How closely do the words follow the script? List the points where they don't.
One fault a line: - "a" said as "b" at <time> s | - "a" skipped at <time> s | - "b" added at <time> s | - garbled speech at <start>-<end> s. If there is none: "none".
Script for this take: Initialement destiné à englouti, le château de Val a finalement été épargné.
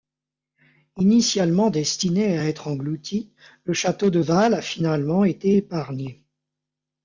- "être" added at 2.5 s